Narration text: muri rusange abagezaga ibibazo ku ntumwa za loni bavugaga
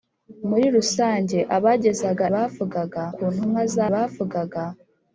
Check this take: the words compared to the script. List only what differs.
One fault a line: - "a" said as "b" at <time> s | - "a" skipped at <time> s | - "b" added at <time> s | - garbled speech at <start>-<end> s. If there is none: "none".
- "ibibazo" said as "bavugaga" at 2.3 s
- "loni" skipped at 3.9 s